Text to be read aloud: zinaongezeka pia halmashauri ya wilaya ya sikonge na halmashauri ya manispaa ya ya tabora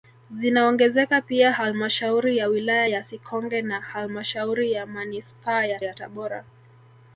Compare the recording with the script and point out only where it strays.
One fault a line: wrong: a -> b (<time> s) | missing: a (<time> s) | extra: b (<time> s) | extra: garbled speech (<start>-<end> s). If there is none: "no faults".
no faults